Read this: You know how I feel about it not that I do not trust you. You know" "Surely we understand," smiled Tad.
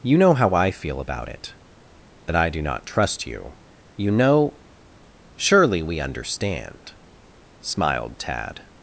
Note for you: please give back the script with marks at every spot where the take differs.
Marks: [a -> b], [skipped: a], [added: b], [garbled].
You know how I feel about it [skipped: not] that I do not trust you. You know" "Surely we understand," smiled Tad.